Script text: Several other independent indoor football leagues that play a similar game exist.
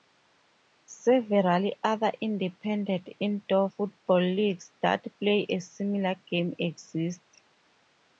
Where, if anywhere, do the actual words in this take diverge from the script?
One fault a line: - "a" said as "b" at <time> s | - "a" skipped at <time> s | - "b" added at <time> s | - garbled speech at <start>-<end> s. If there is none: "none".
none